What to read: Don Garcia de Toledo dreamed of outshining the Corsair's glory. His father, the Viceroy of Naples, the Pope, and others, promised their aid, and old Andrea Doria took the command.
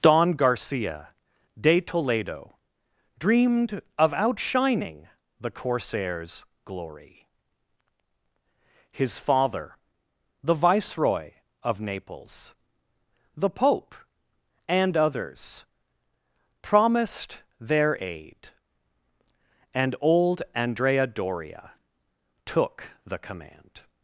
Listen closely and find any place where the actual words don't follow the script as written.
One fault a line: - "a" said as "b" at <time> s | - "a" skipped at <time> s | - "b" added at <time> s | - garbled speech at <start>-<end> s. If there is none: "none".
none